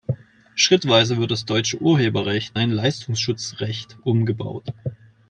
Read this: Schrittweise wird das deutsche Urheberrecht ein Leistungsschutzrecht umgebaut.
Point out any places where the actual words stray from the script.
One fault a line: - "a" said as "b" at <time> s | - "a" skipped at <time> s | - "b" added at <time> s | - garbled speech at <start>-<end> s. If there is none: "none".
none